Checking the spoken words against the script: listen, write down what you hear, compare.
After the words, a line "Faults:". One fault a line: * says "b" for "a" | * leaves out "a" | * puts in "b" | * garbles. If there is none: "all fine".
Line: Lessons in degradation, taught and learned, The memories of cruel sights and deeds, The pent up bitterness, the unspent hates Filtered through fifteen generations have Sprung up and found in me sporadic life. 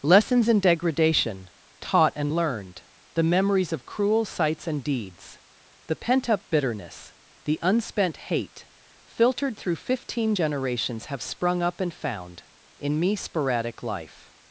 Lessons in degradation, taught and learned, The memories of cruel sights and deeds, The pent up bitterness, the unspent hate Filtered through fifteen generations have Sprung up and found in me sporadic life.
Faults:
* says "hate" for "hates"